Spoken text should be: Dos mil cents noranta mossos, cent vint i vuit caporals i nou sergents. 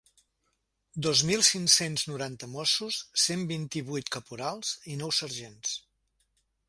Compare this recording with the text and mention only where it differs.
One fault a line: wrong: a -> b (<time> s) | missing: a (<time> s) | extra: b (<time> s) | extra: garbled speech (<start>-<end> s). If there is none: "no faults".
extra: cinc (1.5 s)